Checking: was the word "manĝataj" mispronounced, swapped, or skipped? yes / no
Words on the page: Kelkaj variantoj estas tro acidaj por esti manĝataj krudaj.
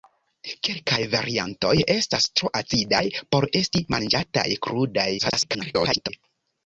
no